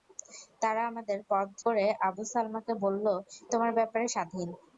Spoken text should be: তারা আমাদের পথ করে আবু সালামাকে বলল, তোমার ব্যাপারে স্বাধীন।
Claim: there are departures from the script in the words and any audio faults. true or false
false